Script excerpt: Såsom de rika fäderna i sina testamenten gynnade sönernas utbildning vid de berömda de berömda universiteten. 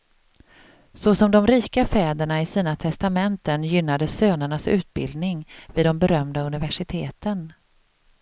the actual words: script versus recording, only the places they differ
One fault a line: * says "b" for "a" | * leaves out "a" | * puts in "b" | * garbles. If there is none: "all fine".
* leaves out "de berömda"